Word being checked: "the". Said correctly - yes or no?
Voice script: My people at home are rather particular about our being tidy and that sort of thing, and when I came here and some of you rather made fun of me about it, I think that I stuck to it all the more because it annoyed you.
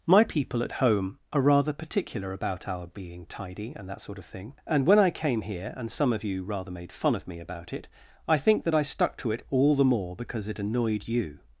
yes